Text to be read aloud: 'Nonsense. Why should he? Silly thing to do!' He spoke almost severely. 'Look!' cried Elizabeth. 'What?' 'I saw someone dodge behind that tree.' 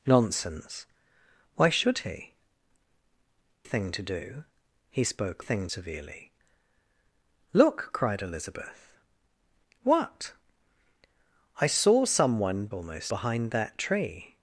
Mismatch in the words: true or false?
true